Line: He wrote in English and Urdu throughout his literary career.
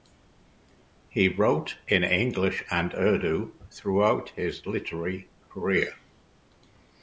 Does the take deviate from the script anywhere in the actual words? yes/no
no